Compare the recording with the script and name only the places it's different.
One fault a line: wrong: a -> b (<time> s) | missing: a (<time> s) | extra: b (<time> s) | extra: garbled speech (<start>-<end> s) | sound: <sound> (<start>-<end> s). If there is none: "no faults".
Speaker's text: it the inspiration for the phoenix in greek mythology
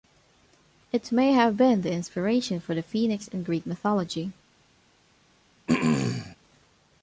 extra: may have been (1.1 s)
sound: throat clearing (5.7-6.4 s)